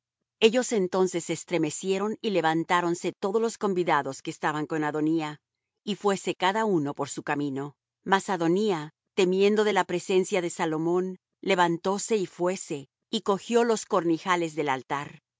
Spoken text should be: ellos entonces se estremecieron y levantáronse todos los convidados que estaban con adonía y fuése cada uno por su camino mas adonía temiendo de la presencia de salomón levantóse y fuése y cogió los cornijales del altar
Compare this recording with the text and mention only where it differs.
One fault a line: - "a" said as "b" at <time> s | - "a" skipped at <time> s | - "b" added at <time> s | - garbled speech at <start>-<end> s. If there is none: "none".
none